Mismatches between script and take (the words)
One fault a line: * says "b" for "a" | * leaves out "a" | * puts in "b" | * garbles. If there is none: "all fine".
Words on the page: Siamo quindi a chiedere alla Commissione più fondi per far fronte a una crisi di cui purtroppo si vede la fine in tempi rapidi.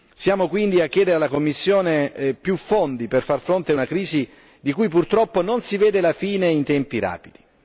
* puts in "non"